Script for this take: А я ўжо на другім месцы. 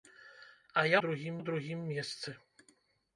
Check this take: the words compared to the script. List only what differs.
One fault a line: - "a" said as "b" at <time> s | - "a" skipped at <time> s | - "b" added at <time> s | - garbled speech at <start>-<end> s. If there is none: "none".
- "ўжо" said as "другім" at 1.0 s